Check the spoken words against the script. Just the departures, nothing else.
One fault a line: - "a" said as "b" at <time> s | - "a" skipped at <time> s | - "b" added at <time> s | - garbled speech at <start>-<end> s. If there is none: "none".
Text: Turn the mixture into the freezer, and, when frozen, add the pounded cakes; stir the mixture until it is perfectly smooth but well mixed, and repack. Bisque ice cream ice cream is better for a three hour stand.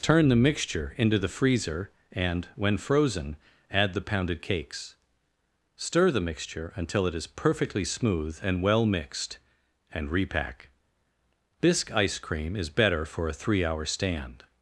- "but" said as "and" at 8.4 s
- "ice cream" skipped at 12.6 s